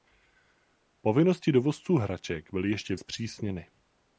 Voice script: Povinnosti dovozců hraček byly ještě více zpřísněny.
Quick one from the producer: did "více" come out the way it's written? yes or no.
no